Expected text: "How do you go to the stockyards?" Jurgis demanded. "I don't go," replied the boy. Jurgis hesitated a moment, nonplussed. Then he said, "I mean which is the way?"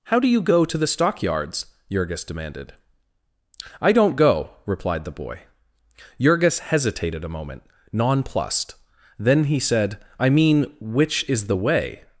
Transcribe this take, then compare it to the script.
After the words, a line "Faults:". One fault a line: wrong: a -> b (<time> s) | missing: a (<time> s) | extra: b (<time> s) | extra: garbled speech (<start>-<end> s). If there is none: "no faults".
"How do you go to the stockyards?" Jurgis demanded. "I don't go," replied the boy. Jurgis hesitated a moment, nonplussed. Then he said, "I mean which is the way?"
Faults:
no faults